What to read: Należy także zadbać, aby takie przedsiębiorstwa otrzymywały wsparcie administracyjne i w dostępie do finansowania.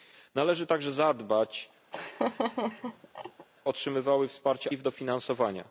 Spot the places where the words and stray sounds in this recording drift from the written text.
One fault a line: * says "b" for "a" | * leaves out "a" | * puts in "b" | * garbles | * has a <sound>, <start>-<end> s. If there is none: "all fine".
* leaves out "aby takie przedsiębiorstwa"
* has a laugh, 1.9-3.5 s
* leaves out "administracyjne"
* leaves out "dostępie"